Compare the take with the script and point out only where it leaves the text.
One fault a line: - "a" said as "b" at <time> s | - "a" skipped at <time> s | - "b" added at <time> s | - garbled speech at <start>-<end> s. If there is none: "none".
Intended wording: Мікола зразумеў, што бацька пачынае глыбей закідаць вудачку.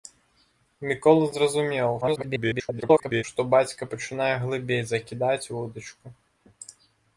- garbled speech at 2.0-3.2 s